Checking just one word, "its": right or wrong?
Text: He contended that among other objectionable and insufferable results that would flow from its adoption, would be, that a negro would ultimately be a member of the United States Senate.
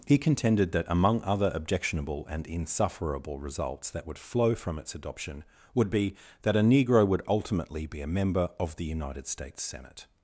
right